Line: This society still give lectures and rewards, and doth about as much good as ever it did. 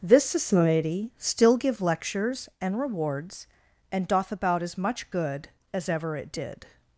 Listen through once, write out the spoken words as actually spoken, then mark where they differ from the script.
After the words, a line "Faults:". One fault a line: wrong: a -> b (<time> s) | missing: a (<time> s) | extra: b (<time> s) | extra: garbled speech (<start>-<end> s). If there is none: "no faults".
This society still give lectures and rewards, and doth about as much good as ever it did.
Faults:
no faults